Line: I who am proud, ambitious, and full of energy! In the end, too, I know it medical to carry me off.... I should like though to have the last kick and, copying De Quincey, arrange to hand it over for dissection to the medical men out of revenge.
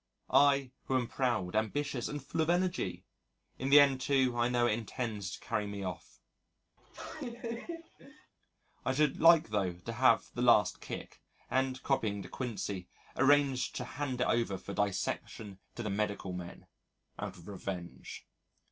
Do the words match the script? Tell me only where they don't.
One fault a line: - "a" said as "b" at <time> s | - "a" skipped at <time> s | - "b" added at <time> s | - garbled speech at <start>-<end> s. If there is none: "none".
- "medical" said as "intends" at 4.7 s